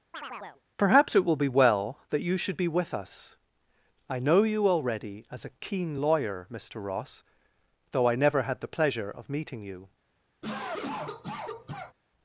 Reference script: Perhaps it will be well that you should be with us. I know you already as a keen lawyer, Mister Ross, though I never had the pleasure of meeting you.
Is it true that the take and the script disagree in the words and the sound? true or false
true